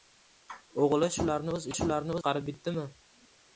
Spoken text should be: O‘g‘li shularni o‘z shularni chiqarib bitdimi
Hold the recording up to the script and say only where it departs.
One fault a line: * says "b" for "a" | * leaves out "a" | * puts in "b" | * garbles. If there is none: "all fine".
all fine